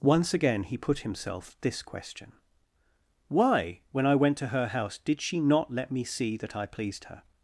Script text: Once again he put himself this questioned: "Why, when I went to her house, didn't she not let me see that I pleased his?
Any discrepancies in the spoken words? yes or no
yes